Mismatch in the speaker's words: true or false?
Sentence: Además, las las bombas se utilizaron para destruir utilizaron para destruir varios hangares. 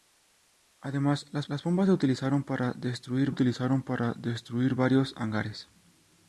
false